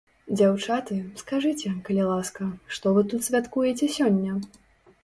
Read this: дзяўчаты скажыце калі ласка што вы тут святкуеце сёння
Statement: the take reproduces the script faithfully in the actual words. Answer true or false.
true